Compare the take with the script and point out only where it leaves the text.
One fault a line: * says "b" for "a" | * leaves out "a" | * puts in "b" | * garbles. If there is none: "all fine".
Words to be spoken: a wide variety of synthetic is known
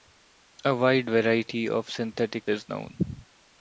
all fine